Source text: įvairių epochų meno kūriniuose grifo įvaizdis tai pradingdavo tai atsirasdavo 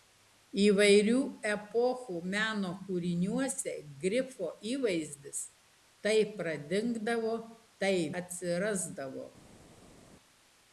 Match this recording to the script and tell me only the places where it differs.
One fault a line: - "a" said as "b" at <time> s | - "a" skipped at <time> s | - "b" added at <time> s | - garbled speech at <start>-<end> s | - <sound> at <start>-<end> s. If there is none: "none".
none